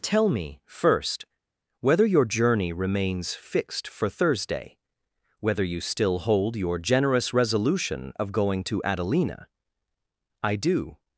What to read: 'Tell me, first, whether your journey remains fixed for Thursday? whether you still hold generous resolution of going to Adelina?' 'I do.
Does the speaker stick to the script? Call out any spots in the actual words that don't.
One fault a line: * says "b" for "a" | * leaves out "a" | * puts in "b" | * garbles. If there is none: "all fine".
* puts in "your"